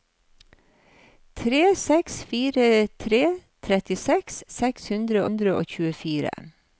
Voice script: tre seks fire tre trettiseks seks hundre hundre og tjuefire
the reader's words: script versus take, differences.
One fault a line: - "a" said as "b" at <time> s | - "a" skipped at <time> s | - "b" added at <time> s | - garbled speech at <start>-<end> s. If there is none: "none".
none